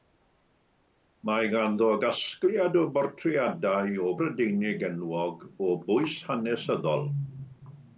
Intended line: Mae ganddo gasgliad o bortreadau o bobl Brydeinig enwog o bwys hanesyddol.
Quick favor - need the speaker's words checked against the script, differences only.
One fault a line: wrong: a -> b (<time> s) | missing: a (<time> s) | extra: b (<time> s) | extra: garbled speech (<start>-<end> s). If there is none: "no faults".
missing: bobl (4.2 s)